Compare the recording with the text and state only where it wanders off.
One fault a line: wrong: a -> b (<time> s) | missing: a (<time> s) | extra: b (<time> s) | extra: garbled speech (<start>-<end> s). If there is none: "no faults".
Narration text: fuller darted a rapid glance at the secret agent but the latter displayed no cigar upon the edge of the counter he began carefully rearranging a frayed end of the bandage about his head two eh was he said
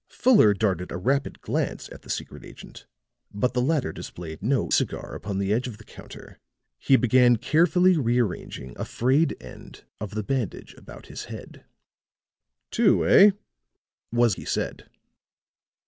no faults